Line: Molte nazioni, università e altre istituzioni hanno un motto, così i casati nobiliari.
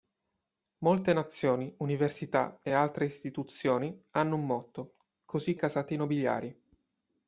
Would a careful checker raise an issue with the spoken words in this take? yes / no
no